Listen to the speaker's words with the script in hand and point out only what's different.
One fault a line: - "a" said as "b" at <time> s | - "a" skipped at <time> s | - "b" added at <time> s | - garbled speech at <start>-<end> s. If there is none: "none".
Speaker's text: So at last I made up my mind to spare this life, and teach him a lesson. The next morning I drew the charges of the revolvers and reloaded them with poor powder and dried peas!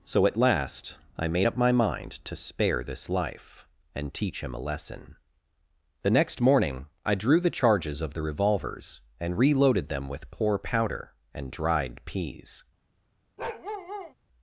none